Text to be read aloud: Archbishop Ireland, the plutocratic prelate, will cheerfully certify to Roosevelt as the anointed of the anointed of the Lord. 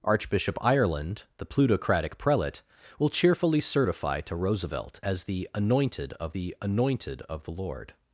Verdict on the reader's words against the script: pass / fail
pass